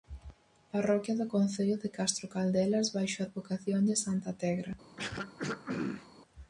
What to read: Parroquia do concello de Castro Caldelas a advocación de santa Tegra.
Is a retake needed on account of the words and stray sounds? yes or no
yes